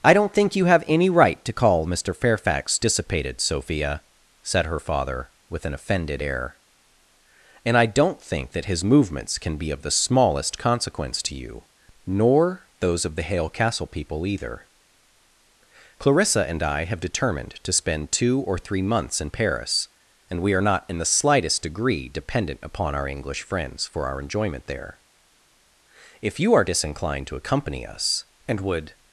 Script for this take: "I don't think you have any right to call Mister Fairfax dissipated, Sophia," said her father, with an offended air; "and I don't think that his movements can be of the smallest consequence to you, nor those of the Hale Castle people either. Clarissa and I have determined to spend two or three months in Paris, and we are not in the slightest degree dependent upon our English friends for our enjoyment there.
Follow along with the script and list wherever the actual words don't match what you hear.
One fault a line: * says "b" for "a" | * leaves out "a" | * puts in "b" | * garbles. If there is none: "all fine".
* puts in "If you are disinclined to accompany us and would"